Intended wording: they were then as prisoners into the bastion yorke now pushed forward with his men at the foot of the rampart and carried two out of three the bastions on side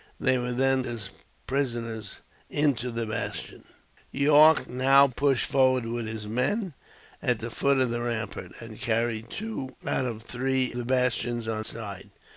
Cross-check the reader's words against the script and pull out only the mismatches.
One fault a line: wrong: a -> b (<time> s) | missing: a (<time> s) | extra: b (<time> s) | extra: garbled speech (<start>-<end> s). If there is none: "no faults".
no faults